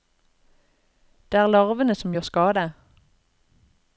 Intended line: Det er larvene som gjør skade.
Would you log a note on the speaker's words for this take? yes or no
no